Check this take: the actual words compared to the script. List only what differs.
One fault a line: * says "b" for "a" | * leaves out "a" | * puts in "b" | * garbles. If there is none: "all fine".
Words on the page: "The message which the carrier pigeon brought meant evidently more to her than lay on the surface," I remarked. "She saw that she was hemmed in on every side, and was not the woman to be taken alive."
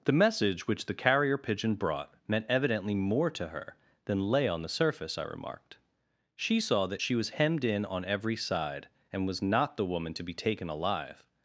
all fine